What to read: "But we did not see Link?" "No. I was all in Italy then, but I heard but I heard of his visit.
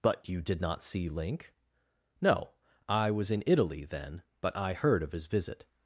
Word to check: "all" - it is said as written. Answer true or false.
false